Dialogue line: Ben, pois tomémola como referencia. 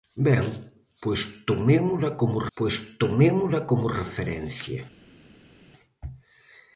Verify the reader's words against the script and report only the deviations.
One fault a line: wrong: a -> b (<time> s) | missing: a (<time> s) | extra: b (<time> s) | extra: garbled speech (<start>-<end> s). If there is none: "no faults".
extra: pois tomémola como (2.6 s)